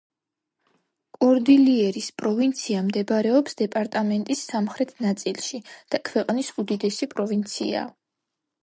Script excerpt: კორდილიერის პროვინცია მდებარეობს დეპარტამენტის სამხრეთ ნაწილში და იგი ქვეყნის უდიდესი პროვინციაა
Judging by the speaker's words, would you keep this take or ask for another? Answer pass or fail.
fail